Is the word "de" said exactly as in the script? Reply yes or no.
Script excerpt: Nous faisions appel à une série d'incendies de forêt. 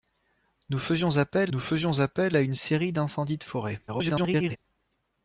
yes